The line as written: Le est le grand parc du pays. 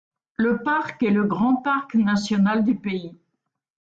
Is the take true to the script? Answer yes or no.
no